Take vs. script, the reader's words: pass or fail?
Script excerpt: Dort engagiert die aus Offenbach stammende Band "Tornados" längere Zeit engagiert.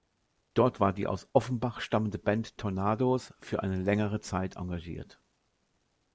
fail